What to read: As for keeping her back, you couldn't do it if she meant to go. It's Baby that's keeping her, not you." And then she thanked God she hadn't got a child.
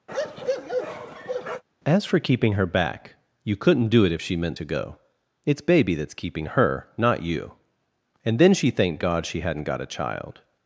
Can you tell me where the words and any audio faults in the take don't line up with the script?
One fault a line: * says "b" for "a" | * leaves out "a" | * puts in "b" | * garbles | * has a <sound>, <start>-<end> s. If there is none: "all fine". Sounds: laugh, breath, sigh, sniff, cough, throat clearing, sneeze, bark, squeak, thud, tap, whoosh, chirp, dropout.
* has a bark, 0.1-1.6 s